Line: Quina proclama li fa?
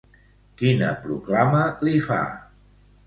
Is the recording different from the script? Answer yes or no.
no